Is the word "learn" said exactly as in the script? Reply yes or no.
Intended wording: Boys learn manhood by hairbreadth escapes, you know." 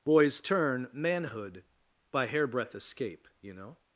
no